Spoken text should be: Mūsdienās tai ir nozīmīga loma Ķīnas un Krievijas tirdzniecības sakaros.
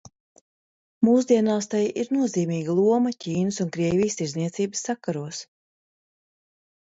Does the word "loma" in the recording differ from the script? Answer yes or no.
no